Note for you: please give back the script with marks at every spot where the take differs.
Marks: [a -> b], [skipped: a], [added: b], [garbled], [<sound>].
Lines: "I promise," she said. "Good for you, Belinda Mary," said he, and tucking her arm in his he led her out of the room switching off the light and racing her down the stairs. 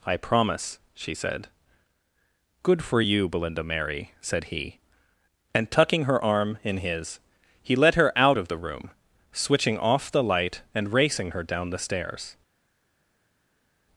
"I promise," she said. "Good for you, Belinda Mary," said he, and tucking her arm in his he led her out of the room switching off the light and racing her down the stairs.